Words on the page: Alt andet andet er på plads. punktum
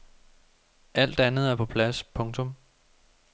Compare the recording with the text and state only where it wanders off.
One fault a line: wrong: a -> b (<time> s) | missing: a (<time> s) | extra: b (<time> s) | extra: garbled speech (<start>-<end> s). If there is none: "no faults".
missing: andet (1.5 s)